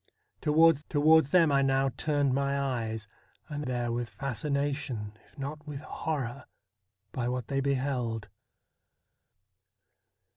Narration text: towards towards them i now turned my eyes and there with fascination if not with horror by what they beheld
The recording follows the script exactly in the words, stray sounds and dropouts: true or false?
true